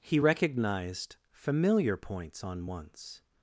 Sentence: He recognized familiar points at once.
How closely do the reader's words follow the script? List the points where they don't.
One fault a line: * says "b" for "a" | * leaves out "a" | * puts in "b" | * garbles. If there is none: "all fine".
* says "on" for "at"